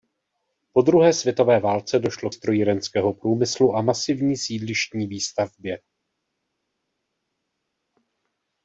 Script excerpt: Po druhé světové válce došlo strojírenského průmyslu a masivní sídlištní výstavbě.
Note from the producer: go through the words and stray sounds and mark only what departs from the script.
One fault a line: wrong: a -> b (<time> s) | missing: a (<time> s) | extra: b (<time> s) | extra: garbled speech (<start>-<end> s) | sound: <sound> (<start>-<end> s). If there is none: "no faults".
no faults